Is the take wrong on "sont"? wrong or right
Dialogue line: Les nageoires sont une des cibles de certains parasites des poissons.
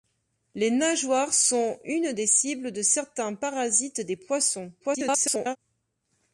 right